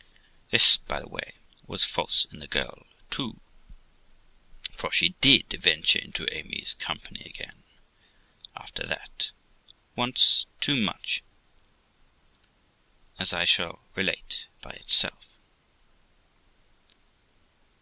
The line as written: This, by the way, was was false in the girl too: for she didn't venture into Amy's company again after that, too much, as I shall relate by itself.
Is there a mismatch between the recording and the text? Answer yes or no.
yes